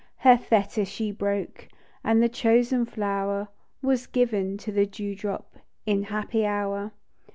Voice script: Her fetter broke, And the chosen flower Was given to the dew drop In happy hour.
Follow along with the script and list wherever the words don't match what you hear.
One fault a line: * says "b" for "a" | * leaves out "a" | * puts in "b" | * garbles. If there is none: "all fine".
* puts in "she"